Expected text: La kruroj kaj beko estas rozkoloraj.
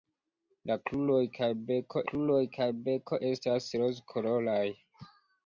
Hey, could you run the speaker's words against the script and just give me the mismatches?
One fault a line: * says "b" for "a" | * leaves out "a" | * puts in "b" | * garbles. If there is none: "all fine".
* puts in "kruroj kaj beko"